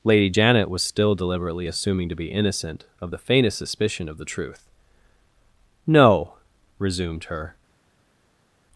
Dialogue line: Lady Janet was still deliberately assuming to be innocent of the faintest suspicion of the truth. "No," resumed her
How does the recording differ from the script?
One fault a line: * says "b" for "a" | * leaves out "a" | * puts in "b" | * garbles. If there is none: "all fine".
all fine